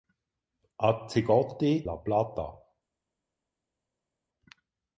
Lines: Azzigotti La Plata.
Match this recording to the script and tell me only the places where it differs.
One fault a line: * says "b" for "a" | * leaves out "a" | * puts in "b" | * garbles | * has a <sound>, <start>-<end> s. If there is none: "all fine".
all fine